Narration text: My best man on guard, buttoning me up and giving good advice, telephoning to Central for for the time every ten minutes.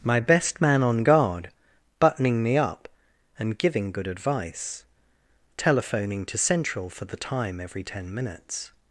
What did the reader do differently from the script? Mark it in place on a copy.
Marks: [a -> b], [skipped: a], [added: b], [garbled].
My best man on guard, buttoning me up and giving good advice, telephoning to Central for [skipped: for] the time every ten minutes.